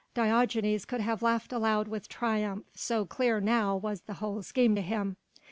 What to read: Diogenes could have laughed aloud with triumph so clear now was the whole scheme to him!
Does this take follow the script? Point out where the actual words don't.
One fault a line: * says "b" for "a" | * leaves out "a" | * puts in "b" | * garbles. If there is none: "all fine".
all fine